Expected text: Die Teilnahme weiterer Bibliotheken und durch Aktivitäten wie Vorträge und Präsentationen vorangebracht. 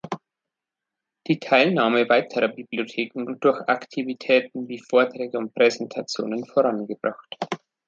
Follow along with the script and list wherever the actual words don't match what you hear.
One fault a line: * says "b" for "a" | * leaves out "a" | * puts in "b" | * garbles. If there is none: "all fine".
all fine